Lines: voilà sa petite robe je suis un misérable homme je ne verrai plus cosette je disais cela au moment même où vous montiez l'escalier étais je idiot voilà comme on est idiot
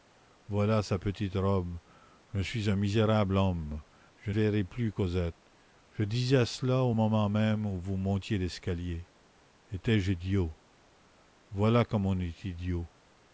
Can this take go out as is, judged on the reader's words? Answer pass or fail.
fail